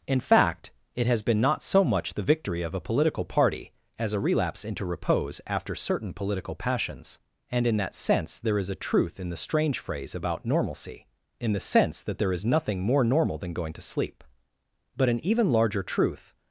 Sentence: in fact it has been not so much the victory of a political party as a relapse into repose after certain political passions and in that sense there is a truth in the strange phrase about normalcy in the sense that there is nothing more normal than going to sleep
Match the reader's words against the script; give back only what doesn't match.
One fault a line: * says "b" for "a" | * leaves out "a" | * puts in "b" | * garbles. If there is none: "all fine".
* puts in "but an even larger truth"